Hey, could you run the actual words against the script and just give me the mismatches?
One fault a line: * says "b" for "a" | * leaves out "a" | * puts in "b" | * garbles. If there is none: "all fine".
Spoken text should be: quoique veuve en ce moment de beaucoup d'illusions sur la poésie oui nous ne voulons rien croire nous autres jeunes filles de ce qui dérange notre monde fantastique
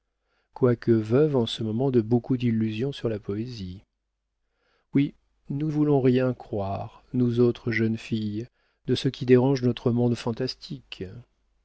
* leaves out "ne"